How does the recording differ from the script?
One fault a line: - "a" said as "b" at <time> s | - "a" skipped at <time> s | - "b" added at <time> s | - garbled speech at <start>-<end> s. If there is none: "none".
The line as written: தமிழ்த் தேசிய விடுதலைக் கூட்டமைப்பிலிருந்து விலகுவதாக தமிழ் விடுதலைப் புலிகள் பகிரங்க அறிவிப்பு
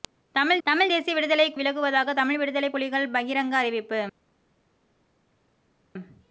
- "தமிழ்த்" added at 0.7 s
- "கூட்டமைப்பிலிருந்து" skipped at 1.6 s